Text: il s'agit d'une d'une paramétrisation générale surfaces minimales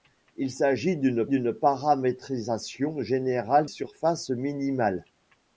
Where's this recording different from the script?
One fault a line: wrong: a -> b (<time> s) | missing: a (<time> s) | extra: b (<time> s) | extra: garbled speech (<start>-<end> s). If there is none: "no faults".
no faults